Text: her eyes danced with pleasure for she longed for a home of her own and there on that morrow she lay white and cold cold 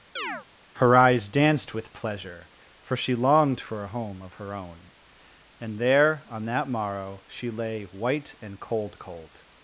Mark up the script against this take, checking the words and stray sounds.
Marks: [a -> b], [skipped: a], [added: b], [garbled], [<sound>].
[chirp] her eyes danced with pleasure for she longed for a home of her own and there on that morrow she lay white and cold cold